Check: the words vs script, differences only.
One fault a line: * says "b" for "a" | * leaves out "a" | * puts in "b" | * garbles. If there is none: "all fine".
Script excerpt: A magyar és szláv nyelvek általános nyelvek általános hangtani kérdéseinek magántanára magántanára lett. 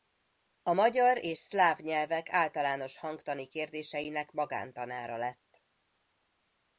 * leaves out "nyelvek általános"
* leaves out "magántanára"